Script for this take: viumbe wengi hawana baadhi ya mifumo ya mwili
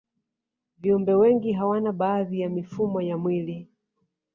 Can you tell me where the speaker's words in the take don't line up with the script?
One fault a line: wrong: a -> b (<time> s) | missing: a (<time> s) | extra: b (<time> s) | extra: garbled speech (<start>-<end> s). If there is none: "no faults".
no faults